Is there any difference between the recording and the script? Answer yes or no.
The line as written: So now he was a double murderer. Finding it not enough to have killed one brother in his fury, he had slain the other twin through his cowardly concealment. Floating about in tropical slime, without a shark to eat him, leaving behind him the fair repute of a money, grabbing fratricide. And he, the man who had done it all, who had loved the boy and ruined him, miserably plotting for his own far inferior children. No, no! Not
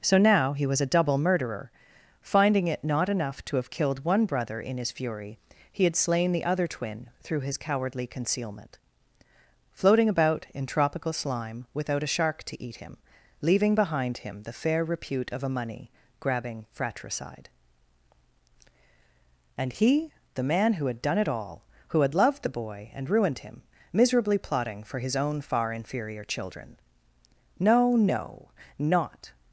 no